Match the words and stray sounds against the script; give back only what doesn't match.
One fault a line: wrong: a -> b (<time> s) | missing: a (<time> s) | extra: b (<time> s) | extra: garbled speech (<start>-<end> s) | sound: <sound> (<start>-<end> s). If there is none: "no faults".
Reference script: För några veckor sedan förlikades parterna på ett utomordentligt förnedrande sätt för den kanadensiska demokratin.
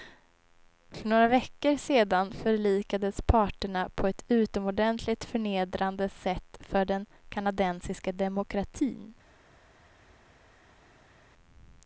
no faults